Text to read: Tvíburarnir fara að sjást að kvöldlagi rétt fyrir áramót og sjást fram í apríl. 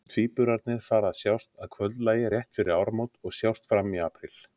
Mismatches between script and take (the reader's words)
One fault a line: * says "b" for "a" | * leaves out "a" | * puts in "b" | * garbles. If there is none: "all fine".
all fine